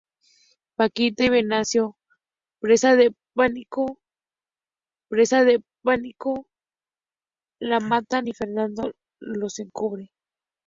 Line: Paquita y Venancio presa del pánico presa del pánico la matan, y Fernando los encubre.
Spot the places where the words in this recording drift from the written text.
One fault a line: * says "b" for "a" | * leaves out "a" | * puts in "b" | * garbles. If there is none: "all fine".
all fine